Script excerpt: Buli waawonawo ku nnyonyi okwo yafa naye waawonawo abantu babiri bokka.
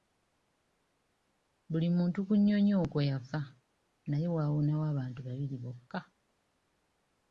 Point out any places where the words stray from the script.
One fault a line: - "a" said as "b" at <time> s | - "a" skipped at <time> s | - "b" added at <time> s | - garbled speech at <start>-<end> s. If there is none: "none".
- "waawonawo" said as "muntu" at 2.0 s